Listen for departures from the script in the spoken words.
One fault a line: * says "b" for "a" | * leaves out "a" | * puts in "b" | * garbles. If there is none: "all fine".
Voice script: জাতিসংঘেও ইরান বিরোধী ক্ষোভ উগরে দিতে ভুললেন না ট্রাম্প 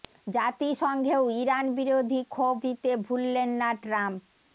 * leaves out "উগরে"